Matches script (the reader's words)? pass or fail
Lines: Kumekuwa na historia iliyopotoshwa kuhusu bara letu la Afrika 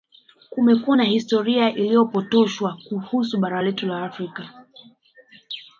pass